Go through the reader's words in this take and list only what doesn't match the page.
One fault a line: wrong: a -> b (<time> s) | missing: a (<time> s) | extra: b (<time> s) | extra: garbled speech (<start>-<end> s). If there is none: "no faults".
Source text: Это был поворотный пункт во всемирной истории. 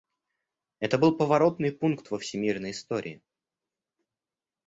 no faults